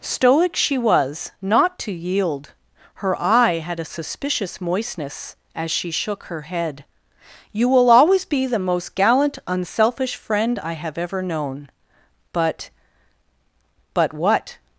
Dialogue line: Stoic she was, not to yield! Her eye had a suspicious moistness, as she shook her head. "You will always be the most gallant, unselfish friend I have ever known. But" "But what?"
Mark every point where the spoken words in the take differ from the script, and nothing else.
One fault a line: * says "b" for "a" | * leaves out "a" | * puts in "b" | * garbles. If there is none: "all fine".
all fine